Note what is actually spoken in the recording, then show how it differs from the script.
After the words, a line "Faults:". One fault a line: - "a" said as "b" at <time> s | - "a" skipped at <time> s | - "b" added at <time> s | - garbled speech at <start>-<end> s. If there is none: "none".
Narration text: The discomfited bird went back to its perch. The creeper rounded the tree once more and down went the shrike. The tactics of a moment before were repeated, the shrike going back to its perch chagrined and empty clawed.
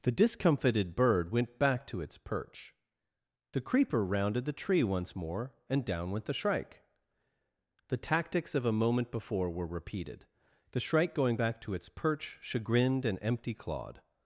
The discomfited bird went back to its perch. The creeper rounded the tree once more and down went the shrike. The tactics of a moment before were repeated, the shrike going back to its perch chagrined and empty clawed.
Faults:
none